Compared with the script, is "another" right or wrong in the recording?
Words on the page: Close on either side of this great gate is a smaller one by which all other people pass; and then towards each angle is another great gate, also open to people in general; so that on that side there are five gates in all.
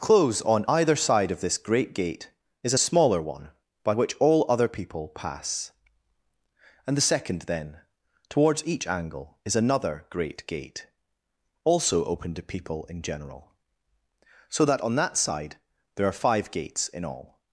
right